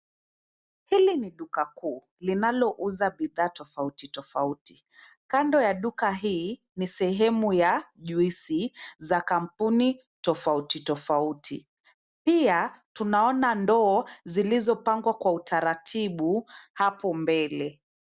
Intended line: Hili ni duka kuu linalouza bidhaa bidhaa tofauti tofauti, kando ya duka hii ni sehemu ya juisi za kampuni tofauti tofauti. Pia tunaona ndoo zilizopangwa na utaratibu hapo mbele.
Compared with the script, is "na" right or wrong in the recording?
wrong